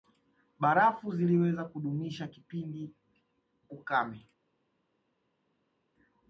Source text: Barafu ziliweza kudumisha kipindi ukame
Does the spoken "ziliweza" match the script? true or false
true